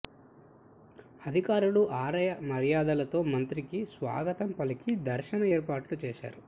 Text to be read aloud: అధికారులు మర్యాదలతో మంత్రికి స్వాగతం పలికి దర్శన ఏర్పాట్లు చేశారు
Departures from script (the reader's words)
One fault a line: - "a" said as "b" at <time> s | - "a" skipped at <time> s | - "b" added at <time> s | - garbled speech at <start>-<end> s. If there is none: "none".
- "ఆలయ" added at 2.0 s